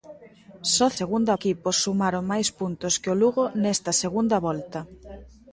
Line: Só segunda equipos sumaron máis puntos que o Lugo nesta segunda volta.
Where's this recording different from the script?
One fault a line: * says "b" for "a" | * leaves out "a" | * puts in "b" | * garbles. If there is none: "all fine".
all fine